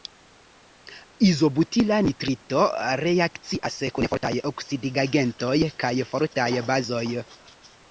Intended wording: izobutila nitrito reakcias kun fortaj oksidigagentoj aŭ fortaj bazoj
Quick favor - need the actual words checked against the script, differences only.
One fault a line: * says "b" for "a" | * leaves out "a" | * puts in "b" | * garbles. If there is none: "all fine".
* says "kaj" for "aŭ"